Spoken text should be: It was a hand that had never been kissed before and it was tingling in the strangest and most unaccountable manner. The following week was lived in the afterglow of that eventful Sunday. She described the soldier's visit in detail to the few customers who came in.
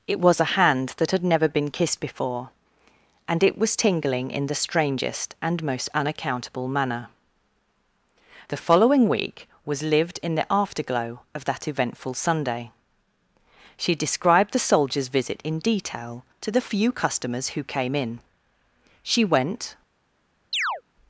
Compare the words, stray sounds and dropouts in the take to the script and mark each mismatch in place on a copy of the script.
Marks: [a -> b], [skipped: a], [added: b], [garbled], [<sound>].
It was a hand that had never been kissed before and it was tingling in the strangest and most unaccountable manner. The following week was lived in the afterglow of that eventful Sunday. She described the soldier's visit in detail to the few customers who came in. [added: She went] [chirp]